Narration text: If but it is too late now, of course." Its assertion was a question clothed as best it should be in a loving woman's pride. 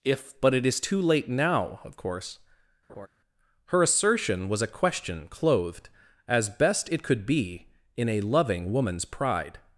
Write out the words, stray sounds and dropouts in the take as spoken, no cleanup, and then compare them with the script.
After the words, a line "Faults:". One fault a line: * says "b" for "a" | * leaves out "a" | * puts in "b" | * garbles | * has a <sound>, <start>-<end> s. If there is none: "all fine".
If but it is too late now, of course." Her assertion was a question clothed as best it could be in a loving woman's pride.
Faults:
* has a laugh, 2.9-3.1 s
* says "Her" for "Its"
* says "could" for "should"